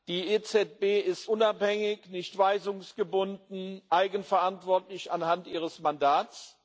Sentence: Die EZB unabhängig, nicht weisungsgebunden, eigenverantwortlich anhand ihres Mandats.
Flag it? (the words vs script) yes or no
yes